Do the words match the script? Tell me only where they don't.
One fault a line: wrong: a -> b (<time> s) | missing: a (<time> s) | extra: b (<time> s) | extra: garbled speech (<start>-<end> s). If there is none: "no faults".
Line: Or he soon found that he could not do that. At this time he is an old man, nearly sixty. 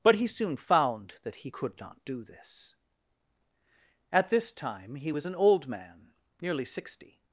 wrong: Or -> But (0.0 s)
wrong: that -> this (2.2 s)
wrong: is -> was (5.1 s)